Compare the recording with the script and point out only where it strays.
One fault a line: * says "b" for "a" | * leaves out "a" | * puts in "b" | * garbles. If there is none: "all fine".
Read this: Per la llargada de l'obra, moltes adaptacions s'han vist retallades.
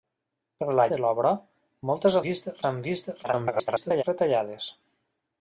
* leaves out "llargada"
* says "vist" for "adaptacions"
* garbles